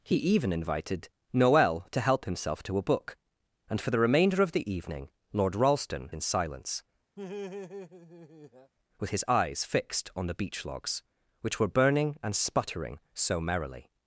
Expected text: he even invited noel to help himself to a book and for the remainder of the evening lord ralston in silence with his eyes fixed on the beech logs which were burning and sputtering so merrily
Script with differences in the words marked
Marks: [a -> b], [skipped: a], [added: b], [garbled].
he even invited noel to help himself to a book and for the remainder of the evening lord ralston in silence with his eyes fixed on the beech logs which were burning and sputtering so merrily